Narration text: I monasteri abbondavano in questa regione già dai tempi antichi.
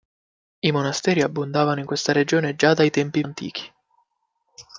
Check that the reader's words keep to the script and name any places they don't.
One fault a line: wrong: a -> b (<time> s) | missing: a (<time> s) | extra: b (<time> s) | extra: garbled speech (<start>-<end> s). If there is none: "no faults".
no faults